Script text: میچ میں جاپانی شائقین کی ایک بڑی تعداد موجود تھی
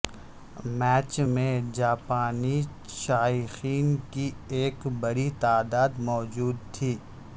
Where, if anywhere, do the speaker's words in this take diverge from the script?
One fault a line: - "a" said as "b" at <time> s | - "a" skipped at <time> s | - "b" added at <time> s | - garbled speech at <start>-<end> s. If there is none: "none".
none